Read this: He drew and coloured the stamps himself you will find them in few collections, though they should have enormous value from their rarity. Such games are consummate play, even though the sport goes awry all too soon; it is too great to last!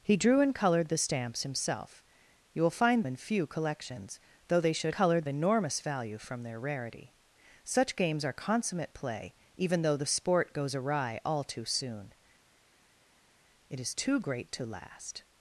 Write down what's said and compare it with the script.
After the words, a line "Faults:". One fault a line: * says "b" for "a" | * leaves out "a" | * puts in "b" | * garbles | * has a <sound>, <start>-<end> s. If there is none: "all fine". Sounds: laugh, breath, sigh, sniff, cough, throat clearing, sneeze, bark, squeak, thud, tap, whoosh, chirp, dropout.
He drew and coloured the stamps himself you will find in few collections, though they should coloured enormous value from their rarity. Such games are consummate play, even though the sport goes awry all too soon; it is too great to last!
Faults:
* leaves out "them"
* says "coloured" for "have"